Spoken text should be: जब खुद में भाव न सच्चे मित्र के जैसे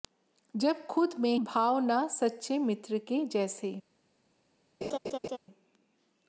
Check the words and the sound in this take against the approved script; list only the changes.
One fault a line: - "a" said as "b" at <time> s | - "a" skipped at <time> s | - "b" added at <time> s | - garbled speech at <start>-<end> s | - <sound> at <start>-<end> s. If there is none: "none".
- laugh at 4.8-5.4 s